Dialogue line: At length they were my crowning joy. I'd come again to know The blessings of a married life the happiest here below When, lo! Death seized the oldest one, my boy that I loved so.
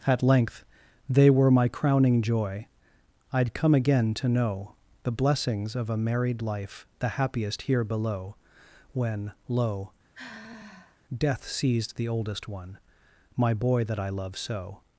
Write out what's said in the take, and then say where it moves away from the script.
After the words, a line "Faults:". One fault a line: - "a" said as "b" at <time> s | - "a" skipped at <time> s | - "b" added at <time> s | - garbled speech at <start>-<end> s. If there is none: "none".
At length they were my crowning joy. I'd come again to know The blessings of a married life the happiest here below When, lo! Death seized the oldest one, my boy that I love so.
Faults:
- "loved" said as "love" at 14.1 s